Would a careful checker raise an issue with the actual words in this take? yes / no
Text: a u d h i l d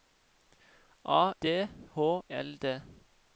yes